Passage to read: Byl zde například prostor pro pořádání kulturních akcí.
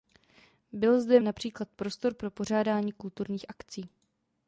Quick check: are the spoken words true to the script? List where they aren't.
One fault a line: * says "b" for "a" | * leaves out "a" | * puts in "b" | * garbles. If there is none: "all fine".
all fine